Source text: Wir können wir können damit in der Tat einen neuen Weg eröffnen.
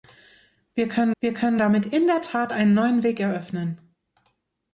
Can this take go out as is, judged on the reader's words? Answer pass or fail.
pass